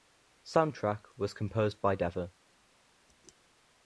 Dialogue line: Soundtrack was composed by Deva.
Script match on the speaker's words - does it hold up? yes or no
yes